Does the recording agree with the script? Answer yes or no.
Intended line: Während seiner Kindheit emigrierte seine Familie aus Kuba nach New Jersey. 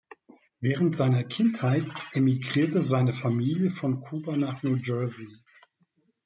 no